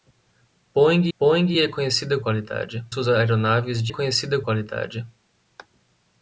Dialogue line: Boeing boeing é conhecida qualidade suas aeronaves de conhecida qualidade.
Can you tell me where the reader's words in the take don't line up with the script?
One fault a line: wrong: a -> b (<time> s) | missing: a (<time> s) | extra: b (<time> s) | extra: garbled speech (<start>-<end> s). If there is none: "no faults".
no faults